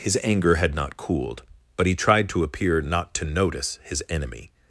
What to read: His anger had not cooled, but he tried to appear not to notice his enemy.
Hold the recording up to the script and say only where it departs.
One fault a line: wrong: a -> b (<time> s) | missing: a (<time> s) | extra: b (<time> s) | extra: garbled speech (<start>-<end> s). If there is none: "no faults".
no faults